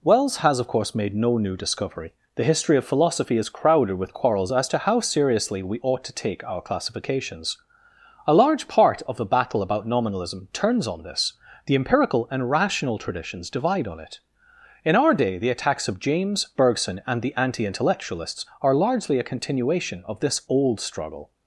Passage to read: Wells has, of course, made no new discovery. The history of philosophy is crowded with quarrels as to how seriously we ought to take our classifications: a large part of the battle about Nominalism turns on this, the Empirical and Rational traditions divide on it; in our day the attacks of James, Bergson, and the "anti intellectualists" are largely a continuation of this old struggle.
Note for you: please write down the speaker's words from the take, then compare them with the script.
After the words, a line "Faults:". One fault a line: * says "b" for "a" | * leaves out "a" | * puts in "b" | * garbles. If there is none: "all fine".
Wells has, of course, made no new discovery. The history of philosophy is crowded with quarrels as to how seriously we ought to take our classifications: a large part of the battle about Nominalism turns on this, the Empirical and Rational traditions divide on it; in our day the attacks of James, Bergson, and the "anti intellectualists" are largely a continuation of this old struggle.
Faults:
all fine